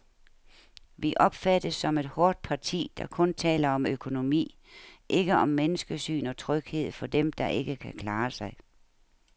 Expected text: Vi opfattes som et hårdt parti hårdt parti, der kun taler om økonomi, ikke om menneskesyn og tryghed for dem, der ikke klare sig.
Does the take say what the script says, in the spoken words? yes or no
no